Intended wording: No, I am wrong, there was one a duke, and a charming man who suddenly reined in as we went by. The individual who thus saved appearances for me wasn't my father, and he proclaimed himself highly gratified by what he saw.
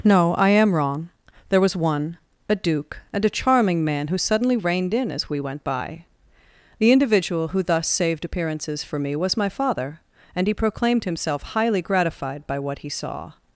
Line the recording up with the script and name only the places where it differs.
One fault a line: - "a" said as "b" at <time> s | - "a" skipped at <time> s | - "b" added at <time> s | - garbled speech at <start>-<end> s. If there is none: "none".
- "wasn't" said as "was" at 9.2 s